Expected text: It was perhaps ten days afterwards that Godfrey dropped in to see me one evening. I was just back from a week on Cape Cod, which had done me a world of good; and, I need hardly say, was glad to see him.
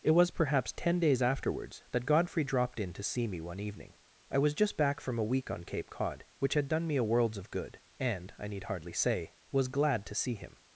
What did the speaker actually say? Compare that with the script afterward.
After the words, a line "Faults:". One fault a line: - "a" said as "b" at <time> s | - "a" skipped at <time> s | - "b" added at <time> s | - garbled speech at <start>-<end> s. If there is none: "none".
It was perhaps ten days afterwards that Godfrey dropped in to see me one evening. I was just back from a week on Cape Cod, which had done me a worlds of good; and, I need hardly say, was glad to see him.
Faults:
- "world" said as "worlds" at 7.0 s